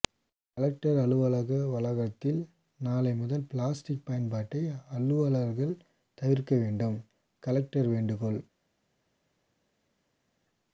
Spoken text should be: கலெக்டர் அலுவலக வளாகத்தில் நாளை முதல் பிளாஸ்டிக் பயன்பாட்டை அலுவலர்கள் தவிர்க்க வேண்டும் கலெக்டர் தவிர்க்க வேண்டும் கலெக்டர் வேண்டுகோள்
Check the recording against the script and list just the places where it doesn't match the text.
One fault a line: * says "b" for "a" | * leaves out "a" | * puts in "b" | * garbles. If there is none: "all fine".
* leaves out "தவிர்க்க வேண்டும் கலெக்டர்"